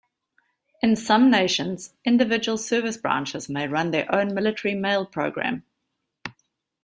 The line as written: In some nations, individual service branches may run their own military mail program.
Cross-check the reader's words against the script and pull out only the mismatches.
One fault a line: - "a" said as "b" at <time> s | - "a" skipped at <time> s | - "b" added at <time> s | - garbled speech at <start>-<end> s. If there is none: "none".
none